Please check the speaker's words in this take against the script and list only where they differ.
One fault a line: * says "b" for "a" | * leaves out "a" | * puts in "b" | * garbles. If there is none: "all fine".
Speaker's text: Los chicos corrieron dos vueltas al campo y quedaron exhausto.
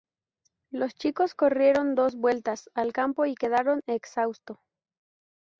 all fine